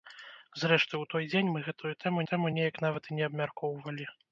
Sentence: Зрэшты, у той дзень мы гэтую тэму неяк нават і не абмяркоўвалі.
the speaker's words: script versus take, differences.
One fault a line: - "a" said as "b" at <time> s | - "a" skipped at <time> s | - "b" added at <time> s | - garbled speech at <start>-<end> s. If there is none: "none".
- "тэму" added at 2.3 s